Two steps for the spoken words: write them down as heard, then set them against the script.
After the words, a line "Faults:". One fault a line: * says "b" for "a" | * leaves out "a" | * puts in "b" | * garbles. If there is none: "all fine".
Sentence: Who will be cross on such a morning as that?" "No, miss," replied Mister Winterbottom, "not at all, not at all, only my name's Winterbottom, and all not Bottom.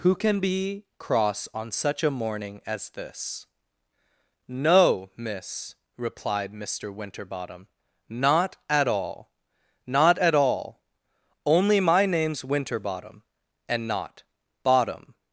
Who can be cross on such a morning as this?" "No, miss," replied Mister Winterbottom, "not at all, not at all, only my name's Winterbottom, and not Bottom.
Faults:
* says "can" for "will"
* says "this" for "that"
* leaves out "all"